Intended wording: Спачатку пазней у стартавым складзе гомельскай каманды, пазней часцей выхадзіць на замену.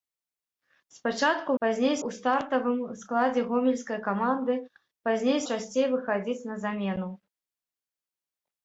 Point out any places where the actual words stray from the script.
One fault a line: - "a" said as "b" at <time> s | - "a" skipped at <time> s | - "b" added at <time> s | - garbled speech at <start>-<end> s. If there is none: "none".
none